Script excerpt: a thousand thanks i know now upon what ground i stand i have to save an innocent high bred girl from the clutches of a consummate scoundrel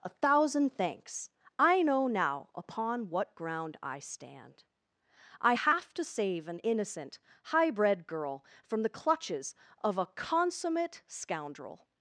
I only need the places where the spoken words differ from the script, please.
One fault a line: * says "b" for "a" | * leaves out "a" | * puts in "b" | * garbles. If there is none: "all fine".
all fine